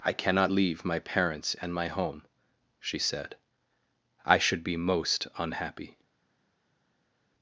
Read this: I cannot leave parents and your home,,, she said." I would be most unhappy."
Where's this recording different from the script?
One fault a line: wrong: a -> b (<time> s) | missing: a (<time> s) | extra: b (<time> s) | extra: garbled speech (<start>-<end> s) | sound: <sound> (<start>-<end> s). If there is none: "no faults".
extra: my (0.8 s)
wrong: your -> my (1.7 s)
wrong: would -> should (4.4 s)